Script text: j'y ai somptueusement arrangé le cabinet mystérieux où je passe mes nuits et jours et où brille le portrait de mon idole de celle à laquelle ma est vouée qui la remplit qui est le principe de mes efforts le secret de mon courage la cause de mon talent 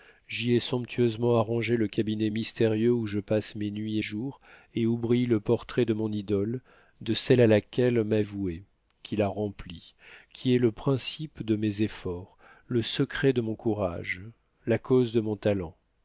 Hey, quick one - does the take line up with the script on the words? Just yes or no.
yes